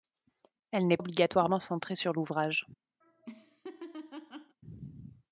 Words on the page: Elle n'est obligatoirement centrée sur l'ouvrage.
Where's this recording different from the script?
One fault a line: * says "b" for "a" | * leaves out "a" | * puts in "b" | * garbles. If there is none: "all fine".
all fine